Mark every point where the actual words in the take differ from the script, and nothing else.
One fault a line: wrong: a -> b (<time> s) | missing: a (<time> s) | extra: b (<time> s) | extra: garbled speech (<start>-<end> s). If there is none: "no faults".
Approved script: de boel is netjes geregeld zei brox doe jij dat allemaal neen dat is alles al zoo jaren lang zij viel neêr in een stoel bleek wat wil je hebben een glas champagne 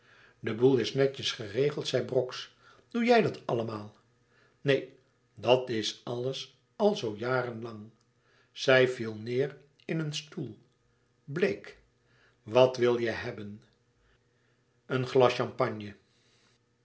no faults